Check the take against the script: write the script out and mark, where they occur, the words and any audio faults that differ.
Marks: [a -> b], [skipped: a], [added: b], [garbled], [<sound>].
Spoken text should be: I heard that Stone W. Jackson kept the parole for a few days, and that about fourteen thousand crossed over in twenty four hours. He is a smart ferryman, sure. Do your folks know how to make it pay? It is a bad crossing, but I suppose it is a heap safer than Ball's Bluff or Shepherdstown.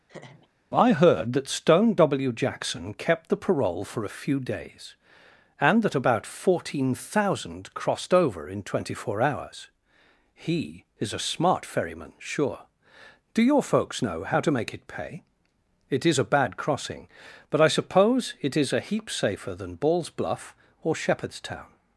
[laugh] I heard that Stone W. Jackson kept the parole for a few days, and that about fourteen thousand crossed over in twenty four hours. He is a smart ferryman, sure. Do your folks know how to make it pay? It is a bad crossing, but I suppose it is a heap safer than Ball's Bluff or Shepherdstown.